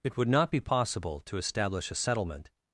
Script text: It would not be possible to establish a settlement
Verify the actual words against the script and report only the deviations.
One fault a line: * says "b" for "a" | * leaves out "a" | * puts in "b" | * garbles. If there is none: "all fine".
all fine